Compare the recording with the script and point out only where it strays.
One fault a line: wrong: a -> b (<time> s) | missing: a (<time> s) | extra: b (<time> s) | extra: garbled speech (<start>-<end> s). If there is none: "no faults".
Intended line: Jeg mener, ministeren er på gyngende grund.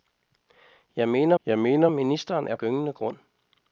extra: jeg mener (1.4 s)
missing: på (2.6 s)